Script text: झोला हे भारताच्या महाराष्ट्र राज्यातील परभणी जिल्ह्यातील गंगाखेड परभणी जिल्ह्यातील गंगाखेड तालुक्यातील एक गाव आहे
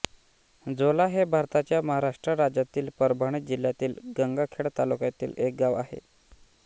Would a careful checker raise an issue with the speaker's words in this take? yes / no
yes